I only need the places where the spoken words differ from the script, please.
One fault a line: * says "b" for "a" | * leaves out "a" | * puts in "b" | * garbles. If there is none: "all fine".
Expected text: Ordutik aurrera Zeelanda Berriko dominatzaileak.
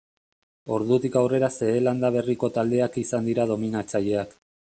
* puts in "taldeak izan dira"